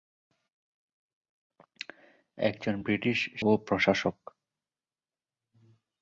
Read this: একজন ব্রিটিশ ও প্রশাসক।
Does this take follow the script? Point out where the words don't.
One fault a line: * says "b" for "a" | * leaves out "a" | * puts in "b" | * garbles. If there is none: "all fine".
all fine